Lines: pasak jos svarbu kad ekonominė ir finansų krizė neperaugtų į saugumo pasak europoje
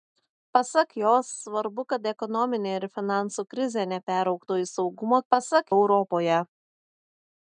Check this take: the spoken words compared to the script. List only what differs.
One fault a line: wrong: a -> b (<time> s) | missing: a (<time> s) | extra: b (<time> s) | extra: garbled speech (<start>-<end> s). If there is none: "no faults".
no faults